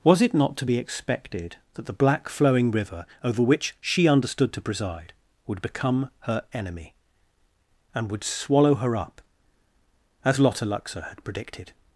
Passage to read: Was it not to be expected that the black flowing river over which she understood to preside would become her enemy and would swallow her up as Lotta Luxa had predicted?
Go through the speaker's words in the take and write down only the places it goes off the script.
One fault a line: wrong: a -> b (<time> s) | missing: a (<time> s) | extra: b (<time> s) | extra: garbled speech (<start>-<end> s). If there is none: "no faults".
no faults